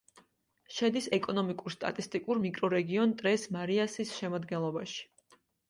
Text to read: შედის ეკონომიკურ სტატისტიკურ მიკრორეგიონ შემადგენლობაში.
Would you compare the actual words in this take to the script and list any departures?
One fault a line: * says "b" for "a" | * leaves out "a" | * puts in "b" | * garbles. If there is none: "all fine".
* puts in "ტრეს მარიასის"